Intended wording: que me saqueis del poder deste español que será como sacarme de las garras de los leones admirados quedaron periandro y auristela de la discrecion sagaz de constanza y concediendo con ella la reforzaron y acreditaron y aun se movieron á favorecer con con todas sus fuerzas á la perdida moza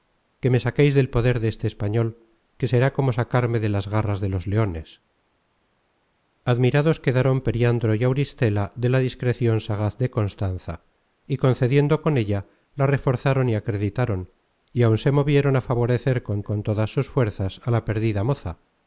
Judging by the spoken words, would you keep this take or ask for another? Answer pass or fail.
pass